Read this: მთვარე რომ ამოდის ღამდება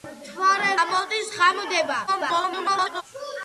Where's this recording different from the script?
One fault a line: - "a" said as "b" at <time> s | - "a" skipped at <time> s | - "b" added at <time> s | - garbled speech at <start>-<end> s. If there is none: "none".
- "რომ" skipped at 0.7 s
- garbled speech at 2.1-3.0 s